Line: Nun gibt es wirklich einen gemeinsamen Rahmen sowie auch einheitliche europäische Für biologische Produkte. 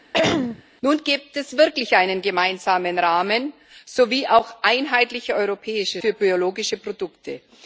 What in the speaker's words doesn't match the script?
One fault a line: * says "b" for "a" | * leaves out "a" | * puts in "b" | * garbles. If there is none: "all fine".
all fine